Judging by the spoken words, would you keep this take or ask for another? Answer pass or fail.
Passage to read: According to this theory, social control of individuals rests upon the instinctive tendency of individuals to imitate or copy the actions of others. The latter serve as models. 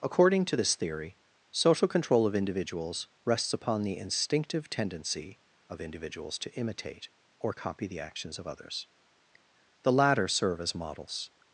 pass